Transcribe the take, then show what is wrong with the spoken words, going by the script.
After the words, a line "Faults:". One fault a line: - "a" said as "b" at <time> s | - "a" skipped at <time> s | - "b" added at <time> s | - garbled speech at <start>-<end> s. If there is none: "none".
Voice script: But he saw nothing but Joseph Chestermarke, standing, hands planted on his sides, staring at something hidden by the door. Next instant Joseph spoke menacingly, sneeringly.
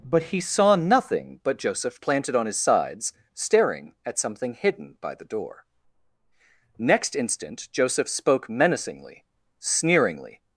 But he saw nothing but Joseph Planted on his sides, staring at something hidden by the door. Next instant Joseph spoke menacingly, sneeringly.
Faults:
- "Chestermarke standing hands" skipped at 2.0 s